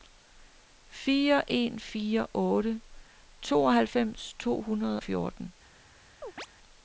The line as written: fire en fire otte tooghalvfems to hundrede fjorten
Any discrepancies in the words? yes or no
no